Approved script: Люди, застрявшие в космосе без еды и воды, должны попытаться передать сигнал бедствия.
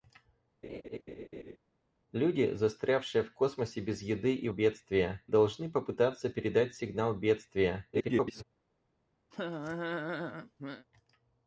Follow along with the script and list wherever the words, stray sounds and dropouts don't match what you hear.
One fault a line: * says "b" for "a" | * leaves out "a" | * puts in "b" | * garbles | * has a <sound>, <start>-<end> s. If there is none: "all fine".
* has a laugh, 0.6-1.6 s
* says "бедствия" for "воды"
* garbles
* has a laugh, 9.3-10.9 s